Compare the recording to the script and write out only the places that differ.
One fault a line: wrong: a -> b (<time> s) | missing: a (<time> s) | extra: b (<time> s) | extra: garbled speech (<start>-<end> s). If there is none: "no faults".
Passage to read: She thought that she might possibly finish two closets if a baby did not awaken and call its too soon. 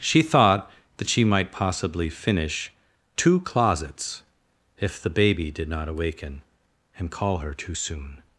wrong: a -> the (5.0 s)
wrong: its -> her (7.4 s)